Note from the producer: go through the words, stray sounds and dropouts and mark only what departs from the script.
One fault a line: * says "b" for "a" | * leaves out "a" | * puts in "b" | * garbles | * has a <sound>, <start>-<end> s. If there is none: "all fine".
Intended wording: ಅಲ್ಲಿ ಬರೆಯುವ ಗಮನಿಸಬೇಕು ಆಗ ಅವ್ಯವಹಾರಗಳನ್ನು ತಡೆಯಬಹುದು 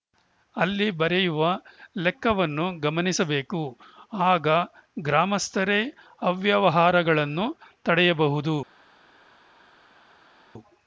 * puts in "ಲೆಕ್ಕವನ್ನು"
* puts in "ಗ್ರಾಮಸ್ಥರೇ"